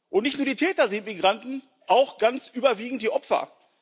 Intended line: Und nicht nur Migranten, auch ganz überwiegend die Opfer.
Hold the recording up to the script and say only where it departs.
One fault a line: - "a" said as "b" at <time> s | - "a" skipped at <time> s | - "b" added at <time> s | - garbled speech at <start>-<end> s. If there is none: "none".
- "die Täter sind" added at 0.5 s